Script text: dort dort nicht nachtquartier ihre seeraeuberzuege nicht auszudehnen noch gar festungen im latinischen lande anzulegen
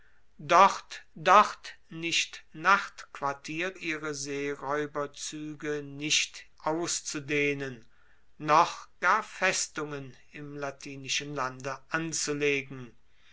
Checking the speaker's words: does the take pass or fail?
pass